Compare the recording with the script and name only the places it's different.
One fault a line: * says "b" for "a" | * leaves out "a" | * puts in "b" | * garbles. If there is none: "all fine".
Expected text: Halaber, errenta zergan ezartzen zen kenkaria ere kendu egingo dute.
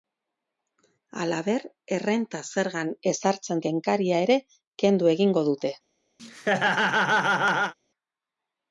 * leaves out "zen"